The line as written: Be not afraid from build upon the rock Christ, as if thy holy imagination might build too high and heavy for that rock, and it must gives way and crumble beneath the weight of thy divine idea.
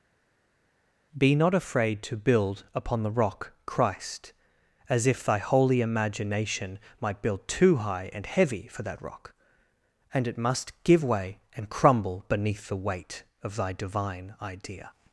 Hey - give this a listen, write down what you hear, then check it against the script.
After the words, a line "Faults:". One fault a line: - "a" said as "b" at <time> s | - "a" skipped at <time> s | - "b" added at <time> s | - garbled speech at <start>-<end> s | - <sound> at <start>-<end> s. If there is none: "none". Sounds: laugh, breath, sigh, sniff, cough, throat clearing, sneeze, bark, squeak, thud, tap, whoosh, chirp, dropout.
Be not afraid to build upon the rock Christ, as if thy holy imagination might build too high and heavy for that rock, and it must give way and crumble beneath the weight of thy divine idea.
Faults:
- "from" said as "to" at 2.0 s
- "gives" said as "give" at 10.8 s